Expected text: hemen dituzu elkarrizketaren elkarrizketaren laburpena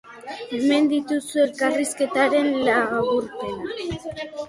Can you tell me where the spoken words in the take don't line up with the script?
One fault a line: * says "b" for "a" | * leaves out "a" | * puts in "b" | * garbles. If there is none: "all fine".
* leaves out "elkarrizketaren"